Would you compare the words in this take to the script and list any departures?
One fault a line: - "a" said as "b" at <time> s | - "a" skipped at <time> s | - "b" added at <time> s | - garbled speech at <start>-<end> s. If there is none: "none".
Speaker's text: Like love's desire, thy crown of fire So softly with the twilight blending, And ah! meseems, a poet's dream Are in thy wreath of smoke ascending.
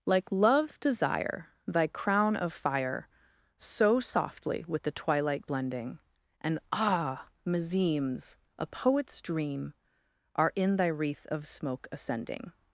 none